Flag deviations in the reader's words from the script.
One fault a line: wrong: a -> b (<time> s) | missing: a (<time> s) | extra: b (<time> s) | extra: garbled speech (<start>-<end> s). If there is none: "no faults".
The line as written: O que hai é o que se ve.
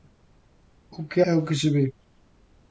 missing: hai (1.2 s)